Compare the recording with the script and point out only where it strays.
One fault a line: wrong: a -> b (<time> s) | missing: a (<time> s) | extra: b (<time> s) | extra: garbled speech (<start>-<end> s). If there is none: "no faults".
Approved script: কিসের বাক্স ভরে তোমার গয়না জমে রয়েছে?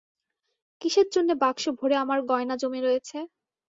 extra: জন্যে (1.1 s)
wrong: তোমার -> আমার (2.0 s)